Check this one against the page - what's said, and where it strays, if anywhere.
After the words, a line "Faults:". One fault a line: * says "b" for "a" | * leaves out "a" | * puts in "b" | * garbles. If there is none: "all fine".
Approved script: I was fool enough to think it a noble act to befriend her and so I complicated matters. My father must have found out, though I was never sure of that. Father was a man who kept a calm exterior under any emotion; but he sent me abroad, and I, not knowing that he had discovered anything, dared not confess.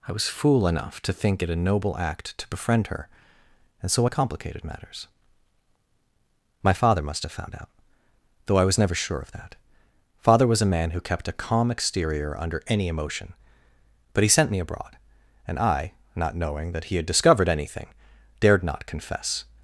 I was fool enough to think it a noble act to befriend her and so I complicated matters. My father must have found out, though I was never sure of that. Father was a man who kept a calm exterior under any emotion; but he sent me abroad, and I, not knowing that he had discovered anything, dared not confess.
Faults:
all fine